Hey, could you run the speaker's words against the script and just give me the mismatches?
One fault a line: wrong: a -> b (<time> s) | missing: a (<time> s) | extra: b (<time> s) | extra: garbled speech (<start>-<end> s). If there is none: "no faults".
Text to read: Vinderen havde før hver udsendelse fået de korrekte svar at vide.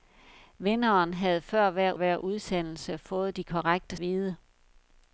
extra: hver (1.9 s)
missing: svar at (4.0 s)